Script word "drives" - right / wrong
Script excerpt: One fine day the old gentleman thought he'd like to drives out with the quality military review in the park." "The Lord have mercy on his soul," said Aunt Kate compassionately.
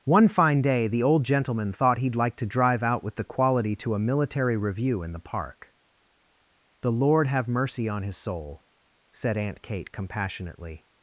wrong